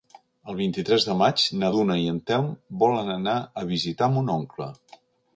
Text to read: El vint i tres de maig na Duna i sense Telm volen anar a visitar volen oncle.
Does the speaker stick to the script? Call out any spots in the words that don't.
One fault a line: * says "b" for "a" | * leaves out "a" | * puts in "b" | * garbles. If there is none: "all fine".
* says "en" for "sense"
* says "mon" for "volen"